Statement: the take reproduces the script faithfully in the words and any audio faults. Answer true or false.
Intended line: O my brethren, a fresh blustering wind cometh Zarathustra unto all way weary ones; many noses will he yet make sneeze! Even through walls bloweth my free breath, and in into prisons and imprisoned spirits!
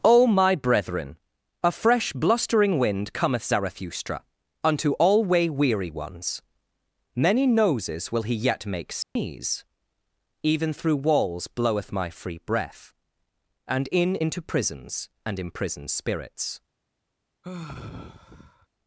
false